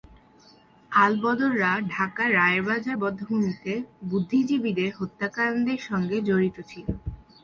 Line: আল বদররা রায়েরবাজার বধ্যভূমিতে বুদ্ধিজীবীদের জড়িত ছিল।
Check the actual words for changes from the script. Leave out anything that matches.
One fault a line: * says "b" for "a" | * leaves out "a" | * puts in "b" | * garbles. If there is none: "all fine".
* puts in "ঢাকার"
* puts in "হত্যাকাণ্ডের সঙ্গে"